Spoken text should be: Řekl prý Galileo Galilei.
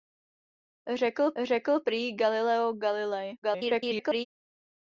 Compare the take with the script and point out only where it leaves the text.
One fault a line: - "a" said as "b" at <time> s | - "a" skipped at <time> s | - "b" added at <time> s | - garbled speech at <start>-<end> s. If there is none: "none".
- "řekl" added at 1.4 s
- garbled speech at 3.4-4.3 s